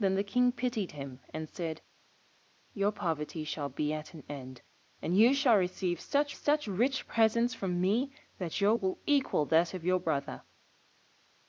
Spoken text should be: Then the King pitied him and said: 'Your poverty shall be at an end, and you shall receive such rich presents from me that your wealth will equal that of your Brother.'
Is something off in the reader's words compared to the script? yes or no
yes